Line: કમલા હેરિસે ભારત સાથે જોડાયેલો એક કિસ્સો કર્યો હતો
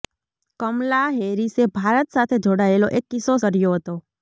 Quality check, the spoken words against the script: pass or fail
pass